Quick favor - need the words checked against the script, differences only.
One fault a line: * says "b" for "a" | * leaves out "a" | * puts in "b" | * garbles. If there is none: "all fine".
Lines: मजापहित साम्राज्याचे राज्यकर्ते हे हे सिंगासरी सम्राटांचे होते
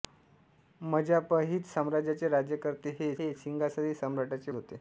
all fine